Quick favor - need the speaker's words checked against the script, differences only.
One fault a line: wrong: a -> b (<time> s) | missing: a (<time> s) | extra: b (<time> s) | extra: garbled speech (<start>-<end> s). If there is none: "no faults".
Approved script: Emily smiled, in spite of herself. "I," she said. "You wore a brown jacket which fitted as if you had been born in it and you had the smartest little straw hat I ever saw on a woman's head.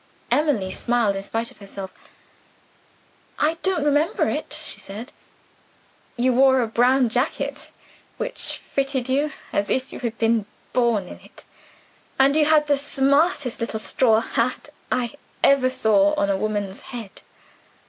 extra: don't remember it (3.6 s)
extra: you (9.1 s)